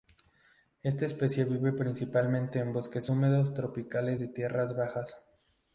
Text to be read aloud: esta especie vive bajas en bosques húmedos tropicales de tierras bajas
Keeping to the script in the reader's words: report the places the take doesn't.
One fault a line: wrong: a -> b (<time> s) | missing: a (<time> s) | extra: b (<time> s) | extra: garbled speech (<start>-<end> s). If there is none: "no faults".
wrong: bajas -> principalmente (1.7 s)